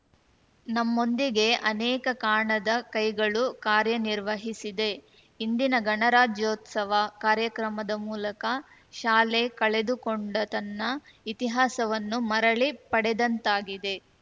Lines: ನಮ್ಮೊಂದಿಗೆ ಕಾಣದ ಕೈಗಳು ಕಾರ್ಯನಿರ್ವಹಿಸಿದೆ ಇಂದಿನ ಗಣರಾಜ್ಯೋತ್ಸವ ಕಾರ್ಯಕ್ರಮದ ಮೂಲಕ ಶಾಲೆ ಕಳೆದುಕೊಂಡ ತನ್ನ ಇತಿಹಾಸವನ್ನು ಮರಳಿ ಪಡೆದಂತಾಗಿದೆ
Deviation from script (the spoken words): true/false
true